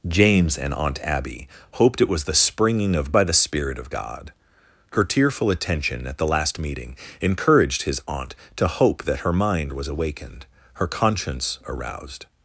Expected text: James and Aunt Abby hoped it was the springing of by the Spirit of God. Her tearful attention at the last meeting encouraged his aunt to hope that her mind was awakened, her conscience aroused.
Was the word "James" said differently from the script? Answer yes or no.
no